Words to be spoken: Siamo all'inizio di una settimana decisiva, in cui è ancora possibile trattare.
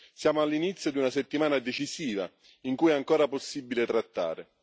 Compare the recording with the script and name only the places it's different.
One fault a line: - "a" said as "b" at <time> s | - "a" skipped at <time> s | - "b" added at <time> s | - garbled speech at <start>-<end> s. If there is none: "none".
none